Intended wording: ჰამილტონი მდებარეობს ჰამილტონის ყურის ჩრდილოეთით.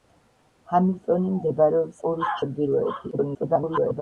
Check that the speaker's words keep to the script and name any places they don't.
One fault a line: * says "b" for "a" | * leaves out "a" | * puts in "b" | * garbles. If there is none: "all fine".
* leaves out "ჰამილტონის"
* garbles